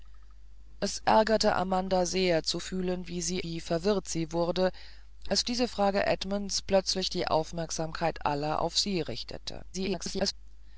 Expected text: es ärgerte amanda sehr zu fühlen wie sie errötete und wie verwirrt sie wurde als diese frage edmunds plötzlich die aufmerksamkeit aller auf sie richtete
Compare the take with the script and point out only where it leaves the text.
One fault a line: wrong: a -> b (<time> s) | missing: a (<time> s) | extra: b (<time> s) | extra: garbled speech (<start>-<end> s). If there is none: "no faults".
missing: errötete und (3.4 s)
extra: garbled speech (9.7-10.3 s)